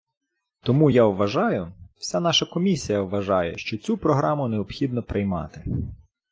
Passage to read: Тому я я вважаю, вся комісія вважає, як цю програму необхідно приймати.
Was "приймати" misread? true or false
false